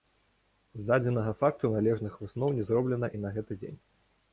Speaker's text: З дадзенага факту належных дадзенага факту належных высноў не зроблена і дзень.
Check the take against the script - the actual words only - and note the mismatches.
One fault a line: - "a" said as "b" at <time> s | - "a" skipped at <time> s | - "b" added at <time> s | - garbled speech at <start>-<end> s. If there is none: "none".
- "дадзенага факту належных" skipped at 2.1 s
- "на гэты" added at 3.3 s